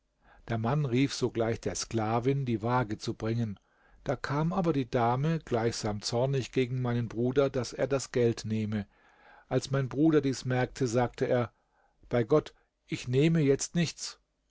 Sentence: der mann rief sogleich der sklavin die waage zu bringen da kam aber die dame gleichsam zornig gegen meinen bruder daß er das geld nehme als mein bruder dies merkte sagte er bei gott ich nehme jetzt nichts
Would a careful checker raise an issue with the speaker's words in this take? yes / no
no